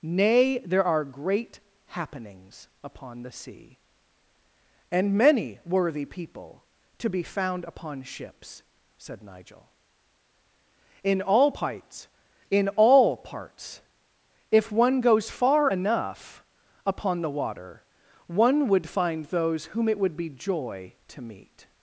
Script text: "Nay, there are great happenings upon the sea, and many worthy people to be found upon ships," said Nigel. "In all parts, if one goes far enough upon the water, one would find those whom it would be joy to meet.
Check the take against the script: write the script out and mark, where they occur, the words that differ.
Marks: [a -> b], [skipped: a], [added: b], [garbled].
"Nay, there are great happenings upon the sea, and many worthy people to be found upon ships," said Nigel. "In all parts, [added: in all parts] if one goes far enough upon the water, one would find those whom it would be joy to meet.